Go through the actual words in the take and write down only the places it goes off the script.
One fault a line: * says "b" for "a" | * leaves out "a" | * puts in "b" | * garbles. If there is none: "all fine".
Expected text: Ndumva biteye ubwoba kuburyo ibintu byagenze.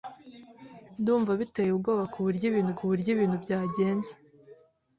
* puts in "kuburyo ibintu"